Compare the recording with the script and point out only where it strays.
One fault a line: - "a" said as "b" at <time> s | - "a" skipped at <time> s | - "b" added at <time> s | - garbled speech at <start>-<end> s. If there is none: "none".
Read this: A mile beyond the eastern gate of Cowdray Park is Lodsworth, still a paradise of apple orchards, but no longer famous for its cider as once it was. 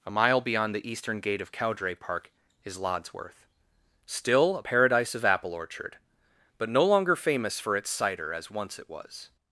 - "orchards" said as "orchard" at 5.5 s